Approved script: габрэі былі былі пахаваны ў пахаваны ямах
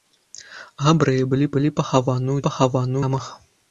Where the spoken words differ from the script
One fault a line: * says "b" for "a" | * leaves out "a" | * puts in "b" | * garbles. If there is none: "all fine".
all fine